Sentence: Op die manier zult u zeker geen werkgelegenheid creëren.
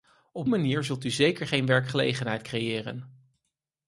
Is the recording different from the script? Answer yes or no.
yes